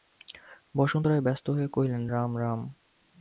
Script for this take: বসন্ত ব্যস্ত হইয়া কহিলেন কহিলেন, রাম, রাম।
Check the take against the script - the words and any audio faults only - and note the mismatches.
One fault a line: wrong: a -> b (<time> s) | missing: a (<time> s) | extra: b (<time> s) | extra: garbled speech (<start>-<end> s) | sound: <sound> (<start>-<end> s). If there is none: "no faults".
extra: রায় (1.0 s)
missing: কহিলেন (2.0 s)